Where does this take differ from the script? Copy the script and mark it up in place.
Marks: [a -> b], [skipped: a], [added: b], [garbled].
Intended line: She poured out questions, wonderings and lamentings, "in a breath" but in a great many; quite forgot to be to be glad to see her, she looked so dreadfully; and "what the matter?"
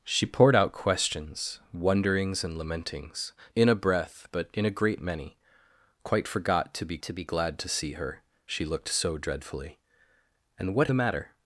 She poured out questions, wonderings and lamentings, "in a breath" but in a great many; quite forgot to be to be glad to see her, she looked so dreadfully; and "what the matter?"